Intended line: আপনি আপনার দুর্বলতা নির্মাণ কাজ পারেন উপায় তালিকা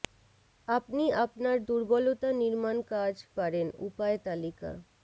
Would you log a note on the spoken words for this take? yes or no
no